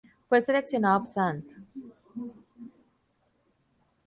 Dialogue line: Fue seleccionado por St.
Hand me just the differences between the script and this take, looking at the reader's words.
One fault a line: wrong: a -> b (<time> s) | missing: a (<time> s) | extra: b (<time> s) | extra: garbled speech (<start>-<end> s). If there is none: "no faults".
missing: por (1.1 s)